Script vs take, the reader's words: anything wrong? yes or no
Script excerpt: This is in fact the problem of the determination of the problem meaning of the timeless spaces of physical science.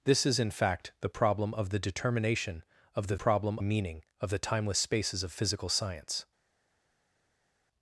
no